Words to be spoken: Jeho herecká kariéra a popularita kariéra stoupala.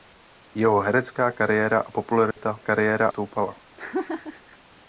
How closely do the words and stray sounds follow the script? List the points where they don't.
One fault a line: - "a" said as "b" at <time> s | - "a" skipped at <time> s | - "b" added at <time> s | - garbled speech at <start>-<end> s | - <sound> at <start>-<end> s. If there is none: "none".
- dropout at 2.3-2.4 s
- laugh at 3.8-4.6 s